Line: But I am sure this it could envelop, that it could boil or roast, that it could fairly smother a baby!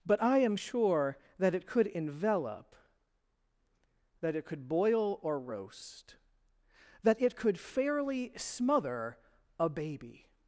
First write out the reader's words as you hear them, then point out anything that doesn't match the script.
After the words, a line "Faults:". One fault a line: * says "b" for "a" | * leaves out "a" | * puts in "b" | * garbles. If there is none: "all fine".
But I am sure that it could envelop, that it could boil or roast, that it could fairly smother a baby!
Faults:
* says "that" for "this"